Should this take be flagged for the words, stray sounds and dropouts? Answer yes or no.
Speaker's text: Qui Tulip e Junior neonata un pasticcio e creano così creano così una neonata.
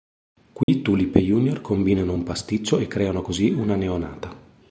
yes